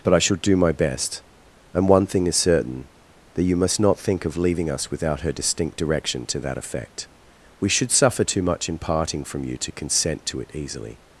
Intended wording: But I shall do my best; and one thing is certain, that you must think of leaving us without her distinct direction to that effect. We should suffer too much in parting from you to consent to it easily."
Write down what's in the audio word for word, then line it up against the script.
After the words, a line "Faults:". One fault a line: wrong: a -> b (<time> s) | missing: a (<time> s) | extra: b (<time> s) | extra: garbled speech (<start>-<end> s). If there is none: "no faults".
But I shall do my best; and one thing is certain, that you must not think of leaving us without her distinct direction to that effect. We should suffer too much in parting from you to consent to it easily."
Faults:
extra: not (3.8 s)